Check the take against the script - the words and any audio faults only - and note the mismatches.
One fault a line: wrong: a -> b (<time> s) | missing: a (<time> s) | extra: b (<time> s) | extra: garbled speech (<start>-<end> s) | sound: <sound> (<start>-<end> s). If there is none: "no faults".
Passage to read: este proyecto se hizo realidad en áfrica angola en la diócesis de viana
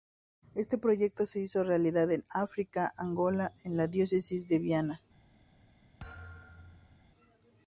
sound: thud (6.0-7.1 s)